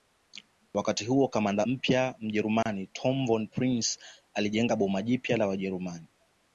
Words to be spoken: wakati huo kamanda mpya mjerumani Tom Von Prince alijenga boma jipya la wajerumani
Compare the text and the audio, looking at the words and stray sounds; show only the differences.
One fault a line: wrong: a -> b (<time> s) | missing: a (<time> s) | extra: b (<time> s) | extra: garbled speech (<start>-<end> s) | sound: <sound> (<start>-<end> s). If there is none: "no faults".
sound: dropout (2.6-2.7 s)